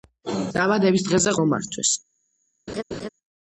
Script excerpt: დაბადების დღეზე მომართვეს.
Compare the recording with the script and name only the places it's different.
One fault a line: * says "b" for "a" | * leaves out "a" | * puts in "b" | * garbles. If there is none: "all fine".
all fine